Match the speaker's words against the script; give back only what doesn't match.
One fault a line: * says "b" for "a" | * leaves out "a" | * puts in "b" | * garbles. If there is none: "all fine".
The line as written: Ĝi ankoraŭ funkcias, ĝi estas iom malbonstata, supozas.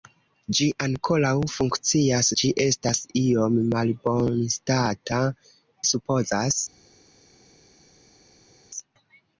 all fine